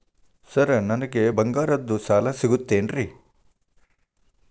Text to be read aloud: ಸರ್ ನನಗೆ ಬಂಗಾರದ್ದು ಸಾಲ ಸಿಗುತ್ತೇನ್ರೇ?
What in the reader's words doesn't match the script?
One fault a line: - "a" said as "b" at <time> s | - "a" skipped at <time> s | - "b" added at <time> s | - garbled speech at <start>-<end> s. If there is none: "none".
none